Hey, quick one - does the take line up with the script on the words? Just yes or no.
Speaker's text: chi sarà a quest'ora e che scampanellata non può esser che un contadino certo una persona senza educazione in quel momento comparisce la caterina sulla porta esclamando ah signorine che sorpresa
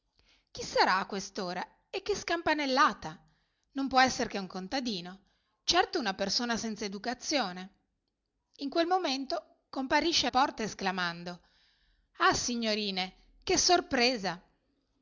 no